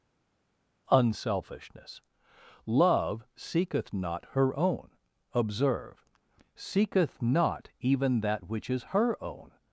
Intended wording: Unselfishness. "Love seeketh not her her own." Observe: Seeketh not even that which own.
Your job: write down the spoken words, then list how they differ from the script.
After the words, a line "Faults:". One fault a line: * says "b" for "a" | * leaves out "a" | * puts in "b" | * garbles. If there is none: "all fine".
Unselfishness. "Love seeketh not her own." Observe: Seeketh not even that which is her own.
Faults:
* leaves out "her"
* puts in "is her"